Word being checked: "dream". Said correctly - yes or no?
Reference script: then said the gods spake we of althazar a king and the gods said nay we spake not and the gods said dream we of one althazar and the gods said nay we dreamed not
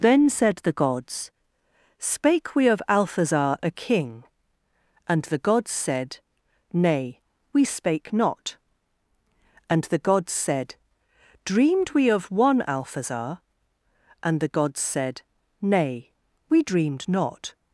no